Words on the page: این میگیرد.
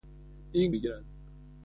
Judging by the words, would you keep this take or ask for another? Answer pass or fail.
pass